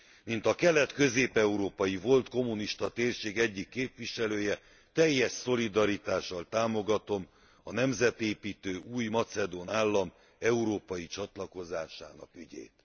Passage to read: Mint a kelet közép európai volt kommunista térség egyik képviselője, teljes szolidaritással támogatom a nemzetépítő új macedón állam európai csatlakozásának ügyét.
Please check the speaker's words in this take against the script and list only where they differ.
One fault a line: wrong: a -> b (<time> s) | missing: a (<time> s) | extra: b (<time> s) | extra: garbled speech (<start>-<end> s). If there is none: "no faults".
no faults